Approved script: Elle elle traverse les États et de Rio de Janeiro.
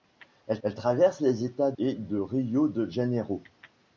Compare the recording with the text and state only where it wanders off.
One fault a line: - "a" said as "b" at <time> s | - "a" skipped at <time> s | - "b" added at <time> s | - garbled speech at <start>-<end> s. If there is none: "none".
none